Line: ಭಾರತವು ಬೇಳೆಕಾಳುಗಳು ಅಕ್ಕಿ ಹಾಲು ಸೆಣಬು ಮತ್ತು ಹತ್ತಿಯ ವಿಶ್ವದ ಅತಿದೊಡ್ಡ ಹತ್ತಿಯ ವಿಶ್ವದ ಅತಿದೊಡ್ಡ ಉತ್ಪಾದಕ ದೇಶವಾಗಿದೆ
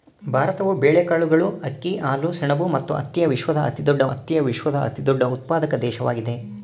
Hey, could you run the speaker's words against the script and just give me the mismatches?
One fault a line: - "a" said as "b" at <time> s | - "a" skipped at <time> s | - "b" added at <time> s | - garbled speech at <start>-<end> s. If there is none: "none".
none